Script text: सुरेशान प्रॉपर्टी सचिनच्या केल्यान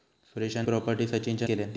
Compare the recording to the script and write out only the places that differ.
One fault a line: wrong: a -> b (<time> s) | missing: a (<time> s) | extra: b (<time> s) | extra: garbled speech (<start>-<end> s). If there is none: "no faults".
no faults